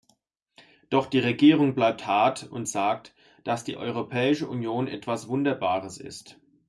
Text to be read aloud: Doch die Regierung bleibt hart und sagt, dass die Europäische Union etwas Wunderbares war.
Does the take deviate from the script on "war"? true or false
true